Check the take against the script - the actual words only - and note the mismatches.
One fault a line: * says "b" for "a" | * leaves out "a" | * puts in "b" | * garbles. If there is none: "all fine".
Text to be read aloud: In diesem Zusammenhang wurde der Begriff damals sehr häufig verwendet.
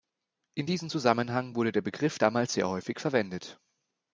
all fine